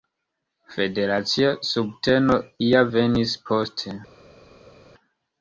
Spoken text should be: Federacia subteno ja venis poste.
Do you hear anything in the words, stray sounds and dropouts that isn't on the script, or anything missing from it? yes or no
no